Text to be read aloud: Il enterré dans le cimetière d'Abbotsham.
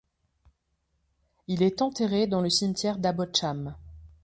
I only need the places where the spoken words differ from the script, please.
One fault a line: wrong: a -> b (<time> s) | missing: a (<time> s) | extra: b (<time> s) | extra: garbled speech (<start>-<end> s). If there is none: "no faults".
extra: est (1.6 s)